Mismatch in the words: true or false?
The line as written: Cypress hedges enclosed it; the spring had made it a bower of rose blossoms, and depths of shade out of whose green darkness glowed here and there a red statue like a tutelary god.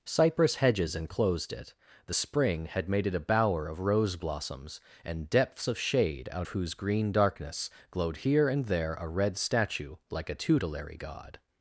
true